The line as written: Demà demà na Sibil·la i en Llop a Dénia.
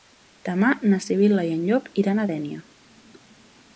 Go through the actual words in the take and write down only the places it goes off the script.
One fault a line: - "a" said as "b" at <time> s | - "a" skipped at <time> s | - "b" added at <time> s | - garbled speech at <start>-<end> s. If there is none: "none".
- "demà" skipped at 0.7 s
- "iran" added at 2.0 s